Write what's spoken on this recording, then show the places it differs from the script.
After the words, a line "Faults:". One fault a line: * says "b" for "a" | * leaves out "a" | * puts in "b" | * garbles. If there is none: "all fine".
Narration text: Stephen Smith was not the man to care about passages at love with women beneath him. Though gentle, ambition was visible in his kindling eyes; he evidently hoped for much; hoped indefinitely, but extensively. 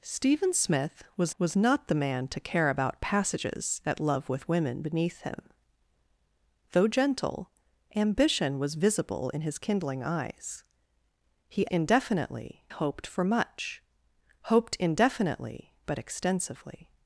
Stephen Smith was was not the man to care about passages at love with women beneath him. Though gentle, ambition was visible in his kindling eyes; he indefinitely hoped for much; hoped indefinitely, but extensively.
Faults:
* puts in "was"
* says "indefinitely" for "evidently"